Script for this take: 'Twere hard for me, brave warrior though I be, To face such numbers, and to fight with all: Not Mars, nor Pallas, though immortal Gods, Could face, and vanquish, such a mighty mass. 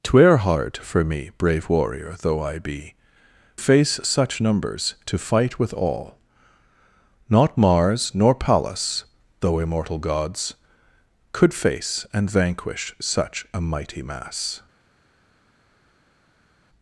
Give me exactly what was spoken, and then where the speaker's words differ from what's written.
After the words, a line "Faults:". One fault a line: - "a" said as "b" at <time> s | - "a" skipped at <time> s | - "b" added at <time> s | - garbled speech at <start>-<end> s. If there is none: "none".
'Twere hard for me, brave warrior though I be, Face such numbers, to fight with all: Not Mars, nor Pallas, though immortal Gods, Could face, and vanquish, such a mighty mass.
Faults:
- "To" skipped at 3.0 s
- "and" skipped at 4.9 s